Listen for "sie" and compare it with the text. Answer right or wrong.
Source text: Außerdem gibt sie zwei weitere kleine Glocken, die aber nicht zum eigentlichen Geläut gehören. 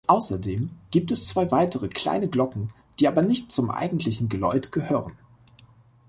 wrong